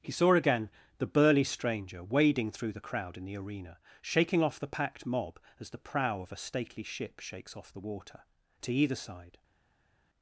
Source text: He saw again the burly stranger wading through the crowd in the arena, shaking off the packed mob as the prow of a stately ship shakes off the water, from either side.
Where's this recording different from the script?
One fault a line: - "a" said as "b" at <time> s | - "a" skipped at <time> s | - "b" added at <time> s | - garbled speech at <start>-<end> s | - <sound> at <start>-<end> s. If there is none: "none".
- "from" said as "to" at 8.6 s